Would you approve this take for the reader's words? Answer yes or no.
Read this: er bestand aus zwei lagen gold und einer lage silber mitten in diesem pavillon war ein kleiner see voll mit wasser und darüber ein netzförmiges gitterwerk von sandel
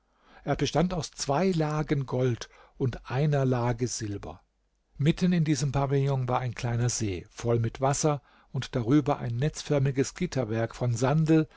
yes